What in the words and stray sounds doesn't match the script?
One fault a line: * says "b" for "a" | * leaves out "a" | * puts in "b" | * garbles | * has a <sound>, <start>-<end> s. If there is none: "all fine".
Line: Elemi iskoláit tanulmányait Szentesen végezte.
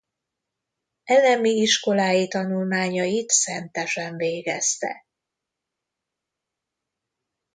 all fine